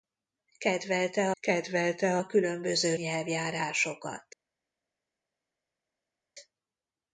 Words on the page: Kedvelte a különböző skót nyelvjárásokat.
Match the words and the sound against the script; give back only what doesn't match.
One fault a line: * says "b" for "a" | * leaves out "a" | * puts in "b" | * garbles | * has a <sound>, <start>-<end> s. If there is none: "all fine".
* puts in "kedvelte"
* leaves out "skót"